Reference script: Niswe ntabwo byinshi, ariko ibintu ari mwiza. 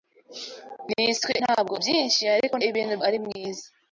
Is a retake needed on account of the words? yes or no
no